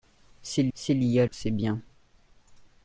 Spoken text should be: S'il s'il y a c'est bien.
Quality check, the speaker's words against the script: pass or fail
pass